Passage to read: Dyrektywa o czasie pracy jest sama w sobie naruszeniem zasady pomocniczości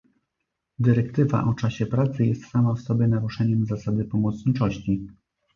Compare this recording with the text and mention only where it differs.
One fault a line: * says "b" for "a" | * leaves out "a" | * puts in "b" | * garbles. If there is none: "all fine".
all fine